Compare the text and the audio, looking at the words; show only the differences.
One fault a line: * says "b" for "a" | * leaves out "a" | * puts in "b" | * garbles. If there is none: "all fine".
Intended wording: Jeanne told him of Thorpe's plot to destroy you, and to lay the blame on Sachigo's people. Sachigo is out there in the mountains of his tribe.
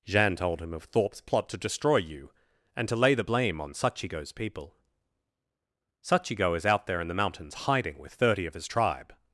* puts in "hiding with thirty"